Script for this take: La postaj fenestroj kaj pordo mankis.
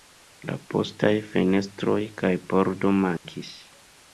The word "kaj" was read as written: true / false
true